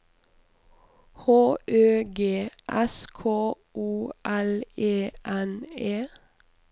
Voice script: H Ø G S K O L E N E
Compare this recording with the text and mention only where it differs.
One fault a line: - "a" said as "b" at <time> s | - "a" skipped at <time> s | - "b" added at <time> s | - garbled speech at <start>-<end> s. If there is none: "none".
none